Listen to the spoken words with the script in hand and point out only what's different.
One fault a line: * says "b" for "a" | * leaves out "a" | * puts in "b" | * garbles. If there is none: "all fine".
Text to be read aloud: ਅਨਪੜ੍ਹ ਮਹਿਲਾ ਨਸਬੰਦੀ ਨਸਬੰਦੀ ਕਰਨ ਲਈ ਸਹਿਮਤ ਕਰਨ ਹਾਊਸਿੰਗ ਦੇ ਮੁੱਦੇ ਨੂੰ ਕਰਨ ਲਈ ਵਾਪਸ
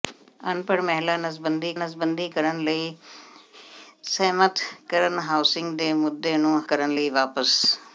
all fine